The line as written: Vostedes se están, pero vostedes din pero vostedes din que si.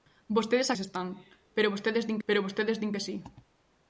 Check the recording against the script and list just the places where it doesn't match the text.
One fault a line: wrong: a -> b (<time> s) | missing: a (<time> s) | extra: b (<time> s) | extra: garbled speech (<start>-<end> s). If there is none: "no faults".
no faults